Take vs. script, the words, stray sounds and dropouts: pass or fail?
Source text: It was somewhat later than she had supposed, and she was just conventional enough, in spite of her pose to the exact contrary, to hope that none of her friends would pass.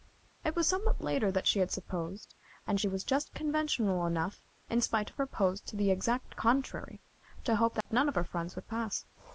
fail